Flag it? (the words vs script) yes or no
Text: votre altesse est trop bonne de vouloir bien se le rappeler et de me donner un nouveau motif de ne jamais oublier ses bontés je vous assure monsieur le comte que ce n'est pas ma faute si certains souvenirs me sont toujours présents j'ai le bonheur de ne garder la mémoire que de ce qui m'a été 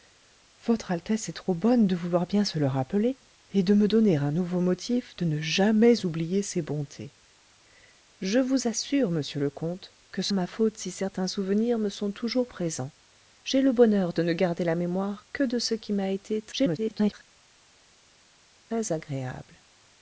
yes